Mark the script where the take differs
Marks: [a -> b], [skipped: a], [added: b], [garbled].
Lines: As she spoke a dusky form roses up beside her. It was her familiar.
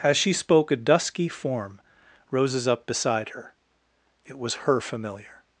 As she spoke a dusky form roses up beside her. It was her familiar.